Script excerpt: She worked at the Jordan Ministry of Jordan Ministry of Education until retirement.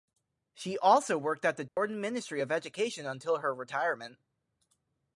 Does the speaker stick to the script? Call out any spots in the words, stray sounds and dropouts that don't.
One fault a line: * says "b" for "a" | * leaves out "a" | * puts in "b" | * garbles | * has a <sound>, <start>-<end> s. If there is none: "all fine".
* puts in "also"
* has a dropout, 1.7-1.8 s
* leaves out "Jordan Ministry of"
* puts in "her"